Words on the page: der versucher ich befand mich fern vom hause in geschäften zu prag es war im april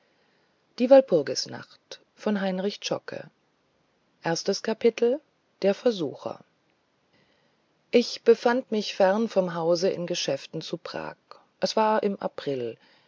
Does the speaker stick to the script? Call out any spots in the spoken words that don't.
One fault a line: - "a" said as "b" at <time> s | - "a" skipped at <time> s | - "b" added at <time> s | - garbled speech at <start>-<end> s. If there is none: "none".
none